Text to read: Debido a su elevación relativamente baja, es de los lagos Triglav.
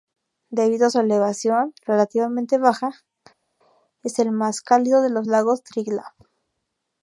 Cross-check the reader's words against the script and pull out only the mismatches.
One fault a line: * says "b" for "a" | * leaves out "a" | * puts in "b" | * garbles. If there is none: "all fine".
* puts in "el más cálido"